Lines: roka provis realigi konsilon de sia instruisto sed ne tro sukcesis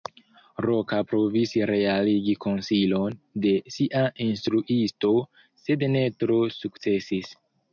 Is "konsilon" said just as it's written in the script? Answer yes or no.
yes